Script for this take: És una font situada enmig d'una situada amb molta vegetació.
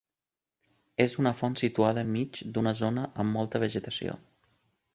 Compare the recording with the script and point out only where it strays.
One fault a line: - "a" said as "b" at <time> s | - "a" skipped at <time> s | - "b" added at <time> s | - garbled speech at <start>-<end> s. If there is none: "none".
- "situada" said as "zona" at 2.8 s